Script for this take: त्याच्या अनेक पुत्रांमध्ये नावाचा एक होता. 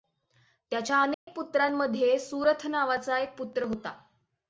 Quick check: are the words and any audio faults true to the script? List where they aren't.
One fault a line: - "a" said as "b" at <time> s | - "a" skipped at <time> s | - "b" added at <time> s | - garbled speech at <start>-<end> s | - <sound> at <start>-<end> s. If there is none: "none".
- dropout at 1.1-1.3 s
- "सुरथ" added at 2.2 s
- "पुत्र" added at 3.4 s